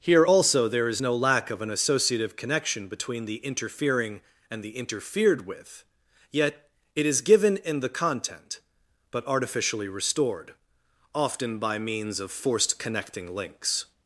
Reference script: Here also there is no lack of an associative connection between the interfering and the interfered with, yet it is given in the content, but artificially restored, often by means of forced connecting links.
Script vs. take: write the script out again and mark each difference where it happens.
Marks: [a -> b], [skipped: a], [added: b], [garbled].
Here also there is no lack of an associative connection between the interfering and the interfered with, yet it is given in the content, but artificially restored, often by means of forced connecting links.